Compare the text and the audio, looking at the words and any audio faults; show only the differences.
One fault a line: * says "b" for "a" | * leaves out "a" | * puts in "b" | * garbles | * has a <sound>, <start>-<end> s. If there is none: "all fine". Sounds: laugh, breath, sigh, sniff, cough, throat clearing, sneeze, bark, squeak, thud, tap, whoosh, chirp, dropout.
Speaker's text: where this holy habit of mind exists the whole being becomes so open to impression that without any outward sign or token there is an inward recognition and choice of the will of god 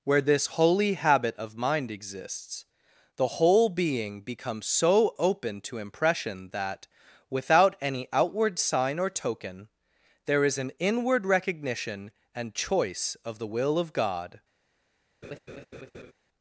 * has a laugh, 15.2-16.1 s